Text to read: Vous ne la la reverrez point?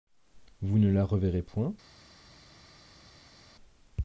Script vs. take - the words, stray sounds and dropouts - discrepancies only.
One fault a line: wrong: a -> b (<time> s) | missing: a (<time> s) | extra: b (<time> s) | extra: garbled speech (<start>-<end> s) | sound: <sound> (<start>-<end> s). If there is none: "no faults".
missing: la (1.1 s)